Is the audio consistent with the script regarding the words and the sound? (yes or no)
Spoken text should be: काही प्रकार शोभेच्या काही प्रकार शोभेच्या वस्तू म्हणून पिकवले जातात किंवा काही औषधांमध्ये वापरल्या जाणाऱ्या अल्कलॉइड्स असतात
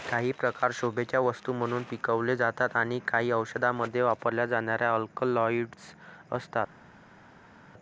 no